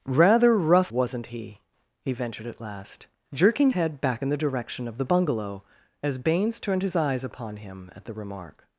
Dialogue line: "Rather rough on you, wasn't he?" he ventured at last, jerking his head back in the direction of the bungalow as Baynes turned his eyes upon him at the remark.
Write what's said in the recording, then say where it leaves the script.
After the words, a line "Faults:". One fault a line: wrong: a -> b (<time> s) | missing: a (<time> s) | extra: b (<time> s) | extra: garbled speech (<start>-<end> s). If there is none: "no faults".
"Rather rough wasn't he?" he ventured at last, jerking head back in the direction of the bungalow as Baynes turned his eyes upon him at the remark.
Faults:
missing: on you (0.9 s)
missing: his (3.7 s)